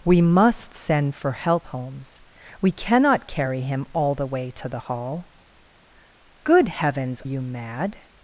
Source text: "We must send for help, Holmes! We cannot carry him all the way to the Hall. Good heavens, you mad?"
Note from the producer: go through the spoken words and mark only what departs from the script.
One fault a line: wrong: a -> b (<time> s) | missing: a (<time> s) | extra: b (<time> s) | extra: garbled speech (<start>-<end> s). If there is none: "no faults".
no faults